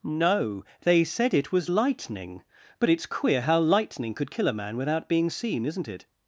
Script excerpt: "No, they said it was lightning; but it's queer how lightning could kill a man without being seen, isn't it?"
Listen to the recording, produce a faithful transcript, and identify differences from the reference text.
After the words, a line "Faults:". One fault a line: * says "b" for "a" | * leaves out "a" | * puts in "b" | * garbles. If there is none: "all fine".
"No, they said it was lightning; but it's queer how lightning could kill a man without being seen, isn't it?"
Faults:
all fine